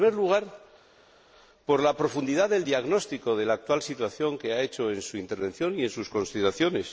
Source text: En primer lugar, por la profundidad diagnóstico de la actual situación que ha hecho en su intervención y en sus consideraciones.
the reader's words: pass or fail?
fail